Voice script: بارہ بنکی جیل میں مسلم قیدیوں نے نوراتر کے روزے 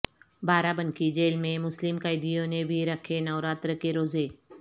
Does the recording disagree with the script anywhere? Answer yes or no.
yes